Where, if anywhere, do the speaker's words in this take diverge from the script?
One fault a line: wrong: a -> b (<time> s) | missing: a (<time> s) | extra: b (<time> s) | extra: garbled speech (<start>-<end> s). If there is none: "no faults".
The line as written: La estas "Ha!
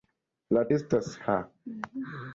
no faults